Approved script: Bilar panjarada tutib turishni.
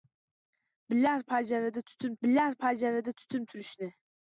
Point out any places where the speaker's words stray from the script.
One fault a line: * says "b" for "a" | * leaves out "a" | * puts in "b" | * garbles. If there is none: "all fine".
* puts in "bilar panjarada tutib"